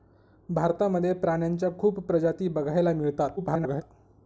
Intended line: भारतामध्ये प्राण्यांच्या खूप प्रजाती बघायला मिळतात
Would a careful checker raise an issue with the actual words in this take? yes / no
yes